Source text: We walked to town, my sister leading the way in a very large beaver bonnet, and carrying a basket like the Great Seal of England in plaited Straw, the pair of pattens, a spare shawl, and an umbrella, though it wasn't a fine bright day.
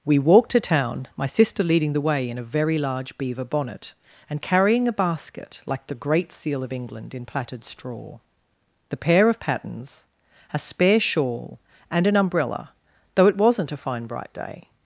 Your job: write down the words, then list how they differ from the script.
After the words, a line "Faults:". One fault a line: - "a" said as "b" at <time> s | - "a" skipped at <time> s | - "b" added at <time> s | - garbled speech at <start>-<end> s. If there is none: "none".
We walked to town, my sister leading the way in a very large beaver bonnet, and carrying a basket like the Great Seal of England in plaited Straw, the pair of pattens, a spare shawl, and an umbrella, though it wasn't a fine bright day.
Faults:
none